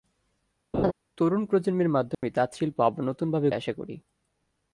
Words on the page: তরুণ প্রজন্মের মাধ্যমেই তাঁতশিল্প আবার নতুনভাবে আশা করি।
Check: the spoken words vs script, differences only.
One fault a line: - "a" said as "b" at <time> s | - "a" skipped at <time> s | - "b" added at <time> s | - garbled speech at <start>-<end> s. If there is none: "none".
none